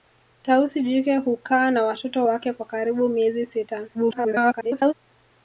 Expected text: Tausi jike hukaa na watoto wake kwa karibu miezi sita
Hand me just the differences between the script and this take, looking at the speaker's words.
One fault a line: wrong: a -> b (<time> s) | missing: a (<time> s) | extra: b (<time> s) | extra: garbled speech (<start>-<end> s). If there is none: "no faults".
extra: garbled speech (3.9-4.9 s)